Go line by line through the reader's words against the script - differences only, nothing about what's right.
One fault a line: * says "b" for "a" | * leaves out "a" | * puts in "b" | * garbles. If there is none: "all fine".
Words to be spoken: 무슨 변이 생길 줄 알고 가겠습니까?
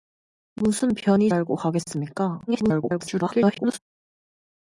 * leaves out "생길 줄"
* garbles